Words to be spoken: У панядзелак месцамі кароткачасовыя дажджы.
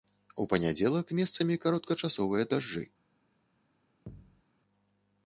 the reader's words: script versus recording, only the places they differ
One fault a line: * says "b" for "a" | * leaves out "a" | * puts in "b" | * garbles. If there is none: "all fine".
all fine